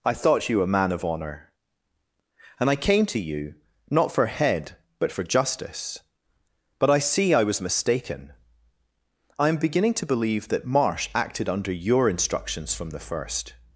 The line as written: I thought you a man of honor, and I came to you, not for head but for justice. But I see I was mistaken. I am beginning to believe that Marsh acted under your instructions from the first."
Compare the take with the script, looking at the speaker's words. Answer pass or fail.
pass